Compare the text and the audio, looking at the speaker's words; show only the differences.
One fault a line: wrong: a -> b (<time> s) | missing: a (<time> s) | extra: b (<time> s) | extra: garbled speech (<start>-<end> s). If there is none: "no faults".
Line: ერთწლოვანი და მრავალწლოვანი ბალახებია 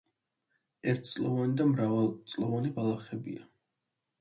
no faults